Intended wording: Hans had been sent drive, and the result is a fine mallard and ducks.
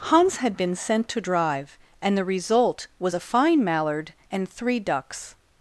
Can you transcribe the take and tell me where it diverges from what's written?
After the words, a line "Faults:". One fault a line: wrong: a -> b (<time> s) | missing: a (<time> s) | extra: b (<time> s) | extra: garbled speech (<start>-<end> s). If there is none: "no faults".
Hans had been sent to drive, and the result was a fine mallard and three ducks.
Faults:
extra: to (1.1 s)
wrong: is -> was (3.0 s)
extra: three (4.5 s)